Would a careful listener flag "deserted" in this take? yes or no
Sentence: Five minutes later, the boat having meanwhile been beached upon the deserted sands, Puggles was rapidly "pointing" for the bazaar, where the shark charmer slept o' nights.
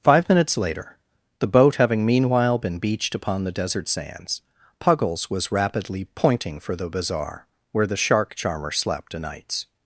yes